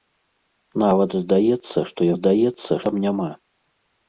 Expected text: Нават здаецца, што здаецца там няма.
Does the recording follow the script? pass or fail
pass